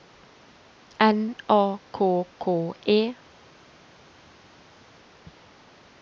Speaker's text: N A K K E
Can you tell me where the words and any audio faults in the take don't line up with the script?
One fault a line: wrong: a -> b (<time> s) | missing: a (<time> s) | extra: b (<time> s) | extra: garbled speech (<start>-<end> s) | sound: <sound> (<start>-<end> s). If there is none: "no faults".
no faults